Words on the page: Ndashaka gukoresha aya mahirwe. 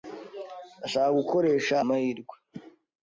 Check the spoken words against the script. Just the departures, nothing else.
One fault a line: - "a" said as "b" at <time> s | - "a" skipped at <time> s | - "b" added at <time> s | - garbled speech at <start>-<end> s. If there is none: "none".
- "aya" skipped at 1.8 s